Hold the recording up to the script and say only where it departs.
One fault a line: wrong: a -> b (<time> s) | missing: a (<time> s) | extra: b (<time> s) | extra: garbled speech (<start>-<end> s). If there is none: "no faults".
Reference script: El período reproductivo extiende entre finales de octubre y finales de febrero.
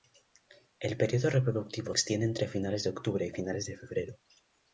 no faults